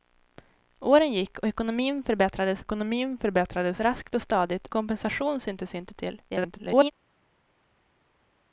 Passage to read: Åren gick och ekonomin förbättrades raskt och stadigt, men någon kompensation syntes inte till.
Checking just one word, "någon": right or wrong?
wrong